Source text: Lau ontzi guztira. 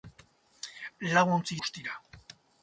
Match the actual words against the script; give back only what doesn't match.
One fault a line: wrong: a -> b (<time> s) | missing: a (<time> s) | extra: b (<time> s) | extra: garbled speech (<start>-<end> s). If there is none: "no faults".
no faults